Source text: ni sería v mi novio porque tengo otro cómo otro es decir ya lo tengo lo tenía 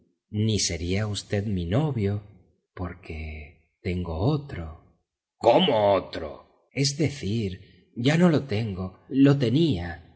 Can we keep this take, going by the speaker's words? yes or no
no